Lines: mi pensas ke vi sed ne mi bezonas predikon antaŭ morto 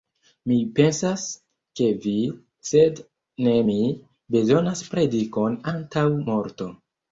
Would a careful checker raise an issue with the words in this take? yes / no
no